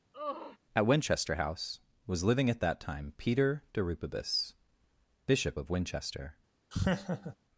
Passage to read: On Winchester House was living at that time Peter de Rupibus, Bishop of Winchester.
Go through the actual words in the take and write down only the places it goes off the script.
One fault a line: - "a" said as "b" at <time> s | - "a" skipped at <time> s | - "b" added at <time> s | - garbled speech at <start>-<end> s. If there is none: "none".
- "On" said as "At" at 0.8 s